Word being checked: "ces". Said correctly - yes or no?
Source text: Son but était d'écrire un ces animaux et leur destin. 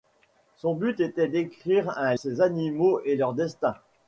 yes